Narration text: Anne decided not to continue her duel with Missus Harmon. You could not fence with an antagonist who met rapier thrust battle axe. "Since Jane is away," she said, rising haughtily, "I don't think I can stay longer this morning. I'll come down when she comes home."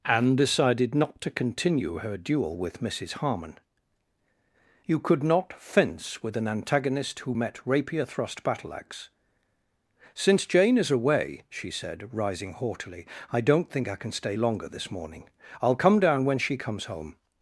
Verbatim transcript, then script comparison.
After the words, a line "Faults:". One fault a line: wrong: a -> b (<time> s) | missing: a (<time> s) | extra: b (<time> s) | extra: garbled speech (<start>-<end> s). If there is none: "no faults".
Anne decided not to continue her duel with Missus Harmon. You could not fence with an antagonist who met rapier thrust battle axe. "Since Jane is away," she said, rising haughtily, "I don't think I can stay longer this morning. I'll come down when she comes home."
Faults:
no faults